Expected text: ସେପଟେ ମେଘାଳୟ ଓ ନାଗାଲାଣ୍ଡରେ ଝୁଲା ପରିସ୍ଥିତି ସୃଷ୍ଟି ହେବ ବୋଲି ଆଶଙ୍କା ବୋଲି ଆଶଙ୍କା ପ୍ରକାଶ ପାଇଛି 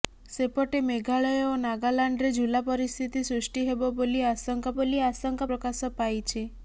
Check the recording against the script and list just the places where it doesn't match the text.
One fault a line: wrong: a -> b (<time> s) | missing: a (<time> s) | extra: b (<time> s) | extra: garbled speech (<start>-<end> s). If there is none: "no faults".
no faults